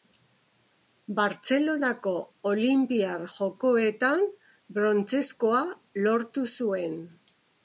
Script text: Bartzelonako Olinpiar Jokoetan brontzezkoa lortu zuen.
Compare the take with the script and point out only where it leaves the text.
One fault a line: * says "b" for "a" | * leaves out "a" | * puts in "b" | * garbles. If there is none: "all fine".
all fine